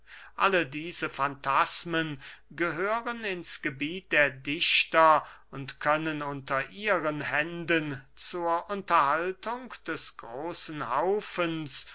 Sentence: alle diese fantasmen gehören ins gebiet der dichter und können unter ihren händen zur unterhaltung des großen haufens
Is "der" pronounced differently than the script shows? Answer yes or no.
no